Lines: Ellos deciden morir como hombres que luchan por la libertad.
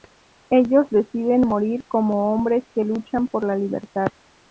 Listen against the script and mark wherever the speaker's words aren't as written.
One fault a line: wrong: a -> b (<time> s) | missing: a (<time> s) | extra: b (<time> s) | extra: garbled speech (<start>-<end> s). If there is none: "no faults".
no faults